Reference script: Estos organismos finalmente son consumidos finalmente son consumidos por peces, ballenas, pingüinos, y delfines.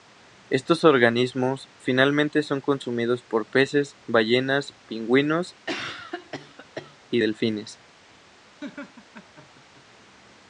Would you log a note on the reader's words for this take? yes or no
yes